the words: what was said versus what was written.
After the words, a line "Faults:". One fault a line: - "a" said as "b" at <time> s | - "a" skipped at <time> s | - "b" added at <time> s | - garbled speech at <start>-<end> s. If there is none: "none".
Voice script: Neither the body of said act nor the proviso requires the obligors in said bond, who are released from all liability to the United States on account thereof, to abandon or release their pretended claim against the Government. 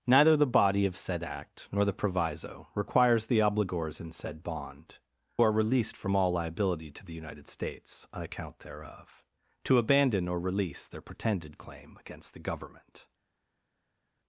Neither the body of said act nor the proviso requires the obligors in said bond, are released from all liability to the United States on account thereof, to abandon or release their pretended claim against the Government.
Faults:
- "who" skipped at 5.0 s